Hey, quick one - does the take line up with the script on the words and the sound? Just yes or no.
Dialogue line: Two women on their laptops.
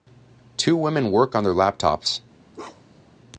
no